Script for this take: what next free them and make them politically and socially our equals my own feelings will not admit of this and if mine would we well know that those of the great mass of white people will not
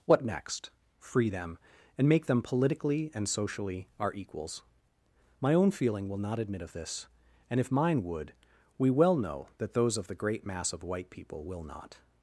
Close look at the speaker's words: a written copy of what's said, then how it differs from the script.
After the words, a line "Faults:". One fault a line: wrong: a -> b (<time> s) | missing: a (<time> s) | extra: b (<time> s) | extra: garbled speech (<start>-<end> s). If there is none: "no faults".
what next free them and make them politically and socially our equals my own feeling will not admit of this and if mine would we well know that those of the great mass of white people will not
Faults:
wrong: feelings -> feeling (5.7 s)